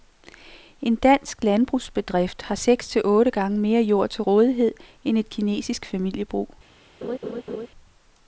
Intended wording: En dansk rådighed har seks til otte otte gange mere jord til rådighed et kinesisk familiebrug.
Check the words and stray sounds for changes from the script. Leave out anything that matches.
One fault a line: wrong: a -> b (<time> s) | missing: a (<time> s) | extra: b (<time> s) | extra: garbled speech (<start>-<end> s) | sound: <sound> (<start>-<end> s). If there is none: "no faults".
wrong: rådighed -> landbrugsbedrift (1.4 s)
missing: otte (3.3 s)
extra: end (5.0 s)
sound: laugh (7.0-7.7 s)